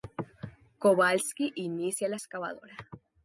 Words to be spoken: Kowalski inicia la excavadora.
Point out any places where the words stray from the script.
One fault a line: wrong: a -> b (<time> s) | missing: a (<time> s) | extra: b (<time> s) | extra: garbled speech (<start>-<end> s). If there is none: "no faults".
no faults